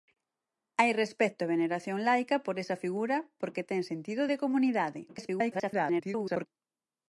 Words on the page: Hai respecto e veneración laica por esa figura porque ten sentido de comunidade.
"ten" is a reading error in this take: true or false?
false